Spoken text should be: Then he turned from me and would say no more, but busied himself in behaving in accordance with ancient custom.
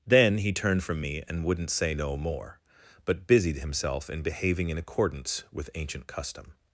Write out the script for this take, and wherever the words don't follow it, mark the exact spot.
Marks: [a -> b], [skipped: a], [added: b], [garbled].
Then he turned from me and [would -> wouldn't] say no more, but busied himself in behaving in accordance with ancient custom.